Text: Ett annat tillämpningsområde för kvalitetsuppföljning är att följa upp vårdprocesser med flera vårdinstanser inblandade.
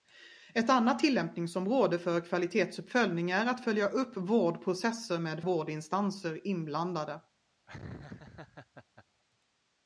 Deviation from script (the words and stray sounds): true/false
true